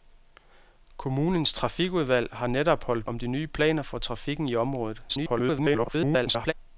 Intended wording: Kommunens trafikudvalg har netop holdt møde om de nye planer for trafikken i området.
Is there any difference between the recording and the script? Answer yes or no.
yes